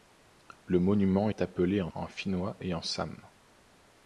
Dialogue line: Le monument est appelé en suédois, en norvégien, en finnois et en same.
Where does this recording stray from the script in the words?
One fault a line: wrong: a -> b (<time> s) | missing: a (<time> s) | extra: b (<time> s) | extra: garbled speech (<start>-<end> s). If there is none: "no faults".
missing: suédois en norvégien (1.9 s)